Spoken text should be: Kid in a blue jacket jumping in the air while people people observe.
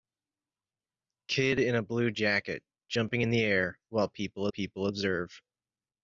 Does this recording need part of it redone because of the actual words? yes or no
no